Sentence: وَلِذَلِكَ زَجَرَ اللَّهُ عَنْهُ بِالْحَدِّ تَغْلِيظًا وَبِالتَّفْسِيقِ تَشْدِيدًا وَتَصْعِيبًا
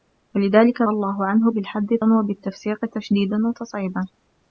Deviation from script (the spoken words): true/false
true